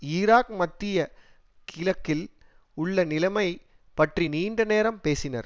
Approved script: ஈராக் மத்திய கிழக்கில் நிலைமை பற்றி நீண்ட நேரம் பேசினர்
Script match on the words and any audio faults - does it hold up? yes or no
no